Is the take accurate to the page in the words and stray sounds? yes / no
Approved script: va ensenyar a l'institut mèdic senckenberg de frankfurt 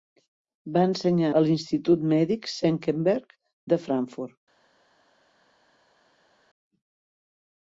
yes